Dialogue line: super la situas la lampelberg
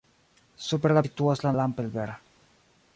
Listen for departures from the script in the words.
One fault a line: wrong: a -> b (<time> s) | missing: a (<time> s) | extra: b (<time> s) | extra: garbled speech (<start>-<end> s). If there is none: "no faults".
no faults